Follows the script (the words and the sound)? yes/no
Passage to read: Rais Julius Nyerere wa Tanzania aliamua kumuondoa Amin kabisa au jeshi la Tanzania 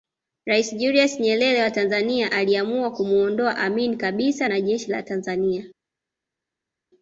no